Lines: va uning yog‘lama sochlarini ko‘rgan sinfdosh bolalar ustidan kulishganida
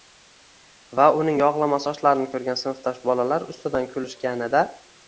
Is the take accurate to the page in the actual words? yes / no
yes